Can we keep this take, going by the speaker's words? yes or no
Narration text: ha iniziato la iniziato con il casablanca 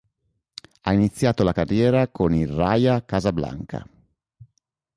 no